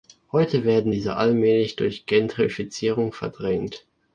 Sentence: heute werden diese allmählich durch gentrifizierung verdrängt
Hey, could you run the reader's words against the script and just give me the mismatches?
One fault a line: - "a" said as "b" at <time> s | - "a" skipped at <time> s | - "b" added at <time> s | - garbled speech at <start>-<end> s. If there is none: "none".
none